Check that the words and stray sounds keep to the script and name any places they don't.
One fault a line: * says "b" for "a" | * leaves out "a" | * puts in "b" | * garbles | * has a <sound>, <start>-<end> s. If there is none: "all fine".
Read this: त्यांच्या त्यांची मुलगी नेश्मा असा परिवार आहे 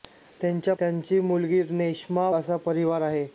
all fine